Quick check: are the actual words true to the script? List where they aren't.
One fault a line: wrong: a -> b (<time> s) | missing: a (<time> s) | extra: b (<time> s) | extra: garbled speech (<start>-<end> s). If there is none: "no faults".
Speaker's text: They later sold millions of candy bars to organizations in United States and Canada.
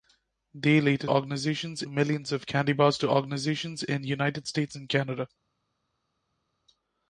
wrong: sold -> organizations (1.1 s)